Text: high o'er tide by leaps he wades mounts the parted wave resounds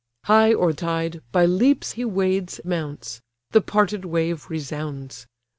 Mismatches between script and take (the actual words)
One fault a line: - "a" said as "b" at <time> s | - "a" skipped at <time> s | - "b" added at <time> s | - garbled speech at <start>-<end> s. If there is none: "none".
none